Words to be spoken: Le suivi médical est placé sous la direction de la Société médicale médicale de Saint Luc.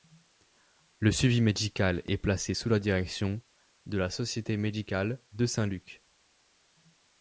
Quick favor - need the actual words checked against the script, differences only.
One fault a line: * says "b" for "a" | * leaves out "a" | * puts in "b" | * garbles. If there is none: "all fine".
* leaves out "médicale"